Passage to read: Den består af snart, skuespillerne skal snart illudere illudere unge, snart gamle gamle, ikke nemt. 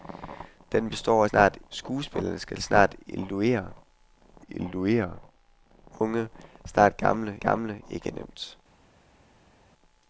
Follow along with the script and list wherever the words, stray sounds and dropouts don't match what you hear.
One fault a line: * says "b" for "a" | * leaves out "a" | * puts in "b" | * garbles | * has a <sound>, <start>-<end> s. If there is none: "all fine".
all fine